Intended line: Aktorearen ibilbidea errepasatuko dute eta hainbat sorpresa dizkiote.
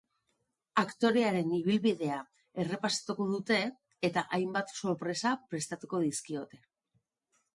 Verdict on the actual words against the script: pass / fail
fail